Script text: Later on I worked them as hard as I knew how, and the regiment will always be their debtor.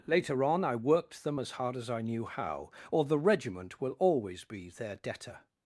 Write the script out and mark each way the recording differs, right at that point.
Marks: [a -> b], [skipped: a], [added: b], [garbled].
Later on I worked them as hard as I knew how, [and -> or] the regiment will always be their debtor.